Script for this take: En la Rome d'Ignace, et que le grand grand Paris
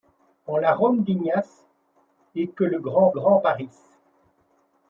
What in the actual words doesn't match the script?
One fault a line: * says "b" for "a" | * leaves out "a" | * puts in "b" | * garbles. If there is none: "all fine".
all fine